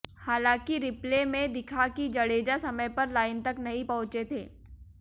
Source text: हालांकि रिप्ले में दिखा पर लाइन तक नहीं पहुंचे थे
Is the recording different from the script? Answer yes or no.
yes